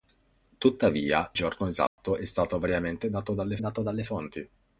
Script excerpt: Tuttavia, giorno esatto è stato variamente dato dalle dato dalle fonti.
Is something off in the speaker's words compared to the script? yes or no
no